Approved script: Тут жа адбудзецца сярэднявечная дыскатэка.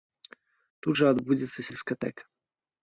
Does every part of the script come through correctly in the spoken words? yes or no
no